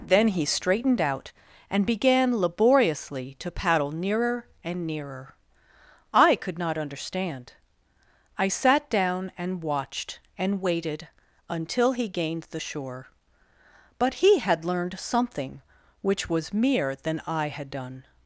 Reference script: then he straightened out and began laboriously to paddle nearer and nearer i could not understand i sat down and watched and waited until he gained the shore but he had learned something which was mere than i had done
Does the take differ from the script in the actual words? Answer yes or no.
no